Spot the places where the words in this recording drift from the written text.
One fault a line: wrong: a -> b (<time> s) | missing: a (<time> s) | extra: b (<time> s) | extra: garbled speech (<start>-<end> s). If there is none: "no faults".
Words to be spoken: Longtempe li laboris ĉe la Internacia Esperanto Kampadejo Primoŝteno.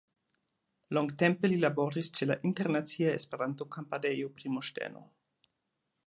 no faults